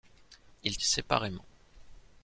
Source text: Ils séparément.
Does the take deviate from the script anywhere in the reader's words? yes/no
no